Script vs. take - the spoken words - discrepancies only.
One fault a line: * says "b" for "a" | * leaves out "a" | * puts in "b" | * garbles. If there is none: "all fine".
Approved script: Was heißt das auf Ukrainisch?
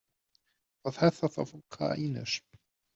all fine